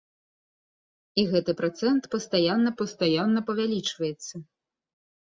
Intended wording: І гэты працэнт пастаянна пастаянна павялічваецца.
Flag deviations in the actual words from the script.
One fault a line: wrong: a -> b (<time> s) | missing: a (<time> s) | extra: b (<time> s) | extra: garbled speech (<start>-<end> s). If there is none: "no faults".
no faults